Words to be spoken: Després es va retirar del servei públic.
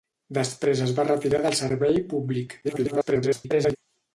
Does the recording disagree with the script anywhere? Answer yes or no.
yes